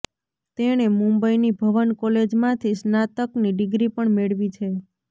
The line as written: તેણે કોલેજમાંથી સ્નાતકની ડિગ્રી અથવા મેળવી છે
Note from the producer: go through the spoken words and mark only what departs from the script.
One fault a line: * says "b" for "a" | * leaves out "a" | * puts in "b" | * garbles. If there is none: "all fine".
* puts in "મુંબઈની ભવન"
* says "પણ" for "અથવા"